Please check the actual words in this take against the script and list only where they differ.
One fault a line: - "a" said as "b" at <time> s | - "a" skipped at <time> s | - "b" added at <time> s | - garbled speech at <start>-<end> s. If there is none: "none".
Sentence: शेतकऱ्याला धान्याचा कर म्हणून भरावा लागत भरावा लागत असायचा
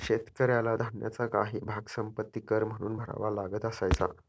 - "काही भाग संपत्ति" added at 1.3 s
- "भरावा लागत" skipped at 3.7 s